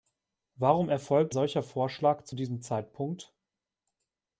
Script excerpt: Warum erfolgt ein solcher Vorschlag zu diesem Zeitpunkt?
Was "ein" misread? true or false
true